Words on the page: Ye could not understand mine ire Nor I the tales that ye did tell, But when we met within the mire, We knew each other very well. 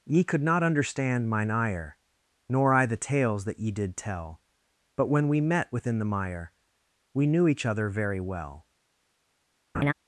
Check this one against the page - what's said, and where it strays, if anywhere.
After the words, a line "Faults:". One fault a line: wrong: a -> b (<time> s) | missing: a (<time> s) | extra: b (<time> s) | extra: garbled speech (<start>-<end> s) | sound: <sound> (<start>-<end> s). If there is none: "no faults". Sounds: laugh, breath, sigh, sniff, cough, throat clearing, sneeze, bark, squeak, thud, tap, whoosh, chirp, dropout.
Ye could not understand mine ire Nor I the tales that ye did tell, But when we met within the mire, We knew each other very well.
Faults:
sound: laugh (9.7-9.9 s)